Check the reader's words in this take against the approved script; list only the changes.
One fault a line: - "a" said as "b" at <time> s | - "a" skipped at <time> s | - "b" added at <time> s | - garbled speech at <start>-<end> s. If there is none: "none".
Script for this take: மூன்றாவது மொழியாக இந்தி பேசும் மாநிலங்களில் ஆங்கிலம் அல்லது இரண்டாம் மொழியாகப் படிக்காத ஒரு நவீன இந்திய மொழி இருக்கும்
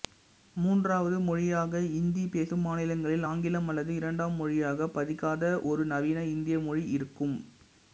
none